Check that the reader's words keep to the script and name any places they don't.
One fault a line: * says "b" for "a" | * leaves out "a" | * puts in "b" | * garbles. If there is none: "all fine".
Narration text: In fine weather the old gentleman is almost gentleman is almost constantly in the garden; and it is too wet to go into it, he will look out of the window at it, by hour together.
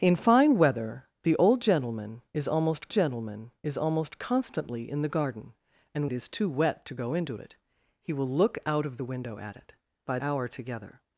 all fine